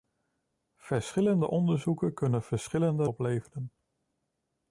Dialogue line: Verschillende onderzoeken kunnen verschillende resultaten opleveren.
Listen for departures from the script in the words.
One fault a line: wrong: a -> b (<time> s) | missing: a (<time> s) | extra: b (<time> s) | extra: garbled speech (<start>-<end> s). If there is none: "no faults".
missing: resultaten (3.1 s)